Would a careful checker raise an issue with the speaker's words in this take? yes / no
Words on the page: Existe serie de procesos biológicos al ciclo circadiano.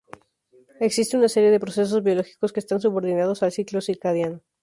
yes